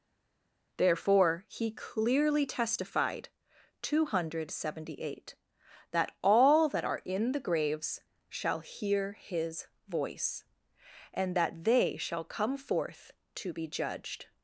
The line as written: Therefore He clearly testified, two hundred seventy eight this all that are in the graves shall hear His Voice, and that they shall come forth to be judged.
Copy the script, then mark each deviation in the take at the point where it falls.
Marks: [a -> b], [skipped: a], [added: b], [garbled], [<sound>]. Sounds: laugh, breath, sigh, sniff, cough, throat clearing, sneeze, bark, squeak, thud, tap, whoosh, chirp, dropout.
Therefore He clearly testified, two hundred seventy eight [this -> that] all that are in the graves shall hear His Voice, and that they shall come forth to be judged.